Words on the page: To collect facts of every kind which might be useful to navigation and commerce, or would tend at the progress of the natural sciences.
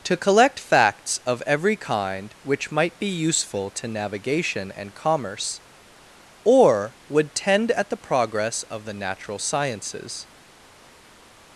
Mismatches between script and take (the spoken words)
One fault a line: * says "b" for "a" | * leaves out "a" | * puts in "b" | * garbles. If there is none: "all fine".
all fine